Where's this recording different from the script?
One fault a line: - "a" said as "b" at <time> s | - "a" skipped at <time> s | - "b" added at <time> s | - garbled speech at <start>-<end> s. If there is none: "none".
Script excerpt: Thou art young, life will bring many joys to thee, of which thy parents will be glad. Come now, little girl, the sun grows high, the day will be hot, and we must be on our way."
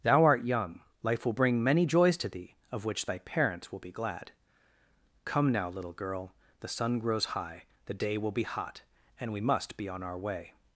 none